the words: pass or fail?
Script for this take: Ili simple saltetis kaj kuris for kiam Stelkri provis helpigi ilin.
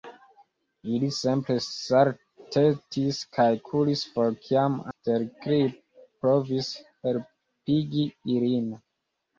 pass